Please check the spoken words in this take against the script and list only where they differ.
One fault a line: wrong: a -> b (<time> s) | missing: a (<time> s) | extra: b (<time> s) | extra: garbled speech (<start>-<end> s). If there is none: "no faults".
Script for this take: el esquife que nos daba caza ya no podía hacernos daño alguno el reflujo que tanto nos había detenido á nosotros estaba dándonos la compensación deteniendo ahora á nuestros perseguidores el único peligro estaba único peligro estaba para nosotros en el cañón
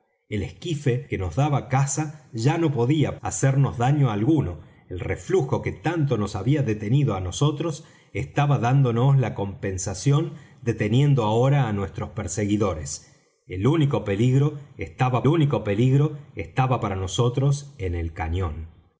no faults